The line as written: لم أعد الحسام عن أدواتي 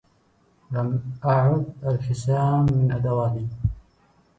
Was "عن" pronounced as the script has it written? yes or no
no